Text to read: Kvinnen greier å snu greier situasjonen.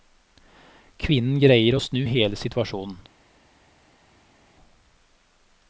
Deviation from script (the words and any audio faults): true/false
true